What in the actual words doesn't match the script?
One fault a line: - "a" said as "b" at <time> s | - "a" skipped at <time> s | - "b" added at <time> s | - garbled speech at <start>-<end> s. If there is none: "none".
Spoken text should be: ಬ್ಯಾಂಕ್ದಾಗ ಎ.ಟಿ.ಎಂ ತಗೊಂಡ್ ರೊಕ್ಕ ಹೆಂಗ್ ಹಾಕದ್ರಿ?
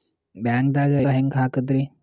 - "ಎ.ಟಿ.ಎಂ ತಗೊಂಡ್ ರೊಕ್ಕ" skipped at 0.9 s